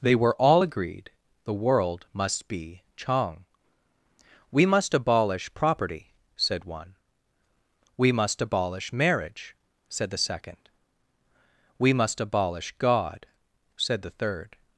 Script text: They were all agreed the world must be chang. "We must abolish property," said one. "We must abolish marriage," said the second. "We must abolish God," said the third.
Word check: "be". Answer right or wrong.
right